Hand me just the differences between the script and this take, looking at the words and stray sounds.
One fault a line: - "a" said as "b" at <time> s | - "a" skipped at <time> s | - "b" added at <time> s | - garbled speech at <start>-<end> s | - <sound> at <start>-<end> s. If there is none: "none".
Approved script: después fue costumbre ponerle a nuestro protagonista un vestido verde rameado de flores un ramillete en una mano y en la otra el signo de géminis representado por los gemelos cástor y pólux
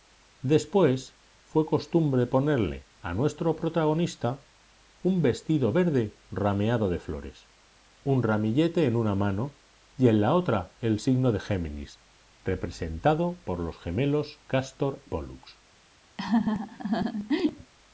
- "y" skipped at 15.0 s
- laugh at 16.2-17.7 s